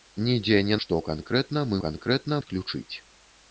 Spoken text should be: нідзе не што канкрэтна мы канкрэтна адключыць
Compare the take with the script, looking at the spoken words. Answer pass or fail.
pass